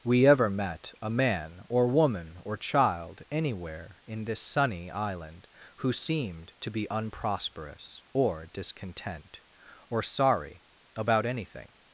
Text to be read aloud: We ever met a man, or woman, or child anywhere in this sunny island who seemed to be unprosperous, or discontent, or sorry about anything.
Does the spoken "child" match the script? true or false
true